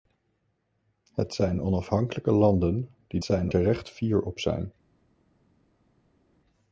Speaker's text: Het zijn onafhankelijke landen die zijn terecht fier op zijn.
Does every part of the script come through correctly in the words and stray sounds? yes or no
yes